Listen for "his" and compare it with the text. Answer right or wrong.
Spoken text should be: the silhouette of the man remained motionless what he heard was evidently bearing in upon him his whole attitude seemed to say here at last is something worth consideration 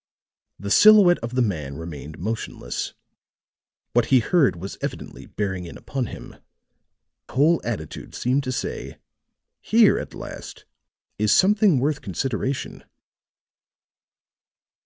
wrong